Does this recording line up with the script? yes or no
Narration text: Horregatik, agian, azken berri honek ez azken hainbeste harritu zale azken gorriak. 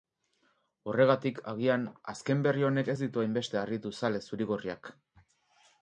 no